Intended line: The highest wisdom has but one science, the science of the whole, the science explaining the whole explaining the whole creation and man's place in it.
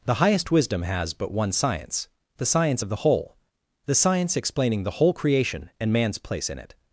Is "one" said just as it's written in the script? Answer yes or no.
yes